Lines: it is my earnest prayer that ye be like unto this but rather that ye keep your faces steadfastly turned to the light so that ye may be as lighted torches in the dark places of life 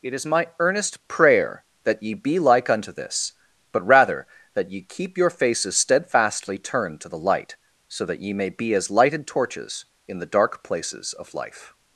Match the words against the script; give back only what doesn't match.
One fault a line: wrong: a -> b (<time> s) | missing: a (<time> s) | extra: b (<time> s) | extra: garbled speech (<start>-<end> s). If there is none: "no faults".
no faults